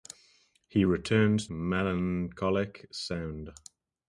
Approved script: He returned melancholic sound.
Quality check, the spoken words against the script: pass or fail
pass